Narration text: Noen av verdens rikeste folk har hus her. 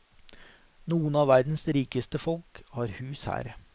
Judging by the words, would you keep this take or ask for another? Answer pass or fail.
pass